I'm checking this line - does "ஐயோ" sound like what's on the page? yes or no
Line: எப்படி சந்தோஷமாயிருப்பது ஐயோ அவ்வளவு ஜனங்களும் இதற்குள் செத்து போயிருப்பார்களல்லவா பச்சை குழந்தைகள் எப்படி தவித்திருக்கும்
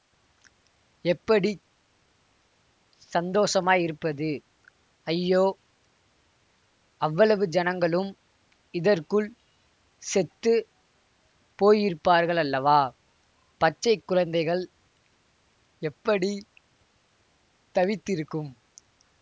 yes